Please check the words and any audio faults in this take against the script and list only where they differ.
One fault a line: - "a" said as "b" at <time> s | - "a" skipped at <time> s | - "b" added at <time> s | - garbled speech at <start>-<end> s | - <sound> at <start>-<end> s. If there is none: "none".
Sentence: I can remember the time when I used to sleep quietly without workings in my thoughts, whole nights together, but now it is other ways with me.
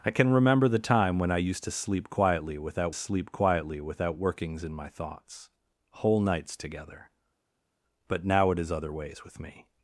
- "sleep quietly without" added at 2.9 s